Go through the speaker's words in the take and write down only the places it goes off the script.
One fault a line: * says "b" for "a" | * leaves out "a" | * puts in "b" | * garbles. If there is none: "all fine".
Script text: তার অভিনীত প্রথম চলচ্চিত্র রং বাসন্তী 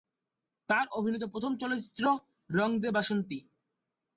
* puts in "দে"